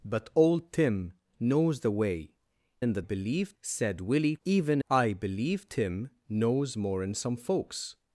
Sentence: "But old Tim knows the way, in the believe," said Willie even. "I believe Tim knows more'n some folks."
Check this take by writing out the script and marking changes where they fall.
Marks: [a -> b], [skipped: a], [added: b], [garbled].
"But old Tim knows the way, in the believe," said Willie even. "I believe Tim knows more'n some folks."